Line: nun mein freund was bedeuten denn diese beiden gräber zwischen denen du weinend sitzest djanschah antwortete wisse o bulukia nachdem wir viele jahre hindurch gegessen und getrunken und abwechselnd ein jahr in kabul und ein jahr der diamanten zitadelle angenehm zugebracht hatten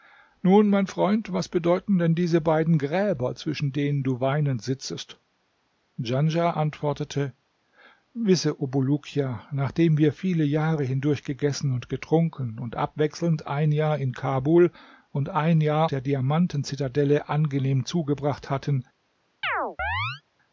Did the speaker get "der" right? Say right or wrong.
right